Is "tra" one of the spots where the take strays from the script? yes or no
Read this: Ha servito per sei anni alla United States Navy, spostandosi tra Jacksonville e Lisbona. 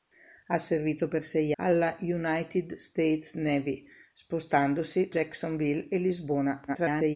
yes